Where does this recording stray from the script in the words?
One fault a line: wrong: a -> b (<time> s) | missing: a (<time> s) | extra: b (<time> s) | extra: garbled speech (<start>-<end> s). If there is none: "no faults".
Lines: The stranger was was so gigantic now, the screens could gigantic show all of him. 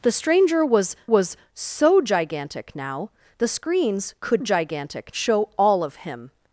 no faults